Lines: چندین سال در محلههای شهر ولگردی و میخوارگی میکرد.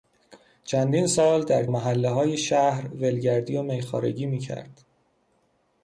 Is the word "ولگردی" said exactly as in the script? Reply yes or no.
yes